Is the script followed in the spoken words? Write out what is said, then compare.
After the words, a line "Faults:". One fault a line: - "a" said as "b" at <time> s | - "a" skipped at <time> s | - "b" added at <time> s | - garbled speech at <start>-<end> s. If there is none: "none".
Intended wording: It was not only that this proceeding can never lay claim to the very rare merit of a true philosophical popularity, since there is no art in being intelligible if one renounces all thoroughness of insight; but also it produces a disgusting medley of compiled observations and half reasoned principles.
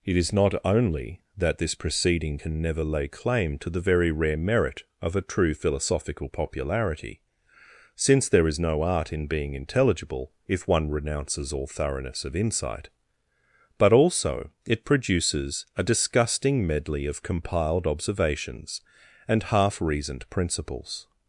It is not only that this proceeding can never lay claim to the very rare merit of a true philosophical popularity, since there is no art in being intelligible if one renounces all thoroughness of insight; but also it produces a disgusting medley of compiled observations and half reasoned principles.
Faults:
- "was" said as "is" at 0.2 s